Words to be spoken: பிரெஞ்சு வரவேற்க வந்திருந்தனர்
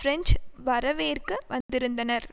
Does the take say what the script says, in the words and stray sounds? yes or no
no